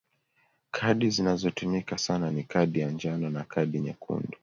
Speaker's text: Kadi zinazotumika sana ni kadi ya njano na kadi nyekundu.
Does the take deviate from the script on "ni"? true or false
false